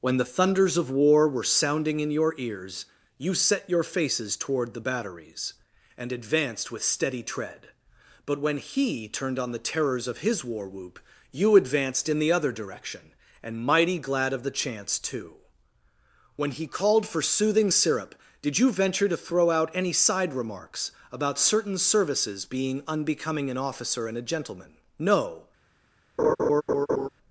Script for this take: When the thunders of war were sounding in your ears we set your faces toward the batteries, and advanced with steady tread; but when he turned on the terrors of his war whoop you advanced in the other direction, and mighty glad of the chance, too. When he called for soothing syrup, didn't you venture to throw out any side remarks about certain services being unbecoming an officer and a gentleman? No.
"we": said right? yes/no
no